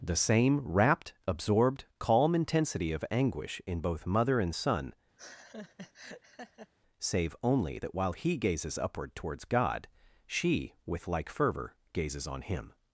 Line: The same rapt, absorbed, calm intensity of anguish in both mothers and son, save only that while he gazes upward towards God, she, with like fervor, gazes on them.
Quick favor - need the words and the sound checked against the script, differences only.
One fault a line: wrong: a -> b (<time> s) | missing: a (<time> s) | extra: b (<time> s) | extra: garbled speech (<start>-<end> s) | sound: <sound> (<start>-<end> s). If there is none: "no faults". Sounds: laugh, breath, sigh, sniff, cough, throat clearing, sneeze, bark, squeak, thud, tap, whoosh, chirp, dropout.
wrong: mothers -> mother (4.1 s)
sound: laugh (5.2-6.7 s)
wrong: them -> him (12.4 s)